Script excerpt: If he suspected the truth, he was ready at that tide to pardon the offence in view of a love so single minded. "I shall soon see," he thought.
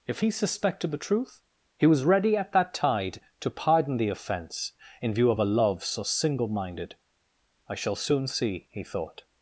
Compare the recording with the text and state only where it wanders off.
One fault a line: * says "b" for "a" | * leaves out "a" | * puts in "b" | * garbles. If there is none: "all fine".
all fine